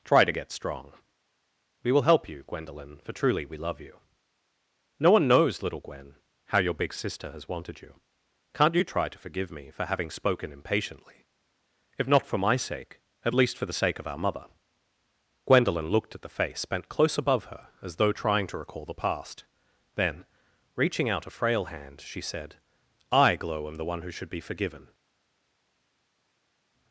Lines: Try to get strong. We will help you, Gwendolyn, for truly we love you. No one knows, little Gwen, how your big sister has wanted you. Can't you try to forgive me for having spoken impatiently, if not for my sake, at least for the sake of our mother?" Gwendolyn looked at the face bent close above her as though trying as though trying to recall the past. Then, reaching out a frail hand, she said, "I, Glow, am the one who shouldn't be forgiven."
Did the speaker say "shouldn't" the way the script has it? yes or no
no